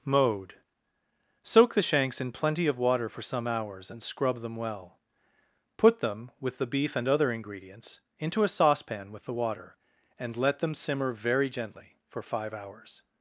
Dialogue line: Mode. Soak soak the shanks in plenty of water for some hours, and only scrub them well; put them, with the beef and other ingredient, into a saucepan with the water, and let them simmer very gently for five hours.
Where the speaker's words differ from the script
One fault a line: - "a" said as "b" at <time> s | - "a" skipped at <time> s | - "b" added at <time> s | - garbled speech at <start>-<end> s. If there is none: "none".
- "soak" skipped at 1.7 s
- "only" skipped at 4.0 s
- "ingredient" said as "ingredients" at 7.3 s